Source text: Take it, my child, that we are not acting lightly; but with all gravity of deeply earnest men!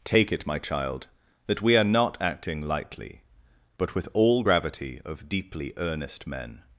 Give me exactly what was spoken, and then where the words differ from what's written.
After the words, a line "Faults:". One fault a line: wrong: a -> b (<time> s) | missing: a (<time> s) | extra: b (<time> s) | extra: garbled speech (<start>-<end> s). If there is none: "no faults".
Take it, my child, that we are not acting lightly; but with all gravity of deeply earnest men!
Faults:
no faults